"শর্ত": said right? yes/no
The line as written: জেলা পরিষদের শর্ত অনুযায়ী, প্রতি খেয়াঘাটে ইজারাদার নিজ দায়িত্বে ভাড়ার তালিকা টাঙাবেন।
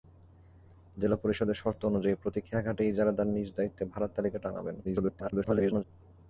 yes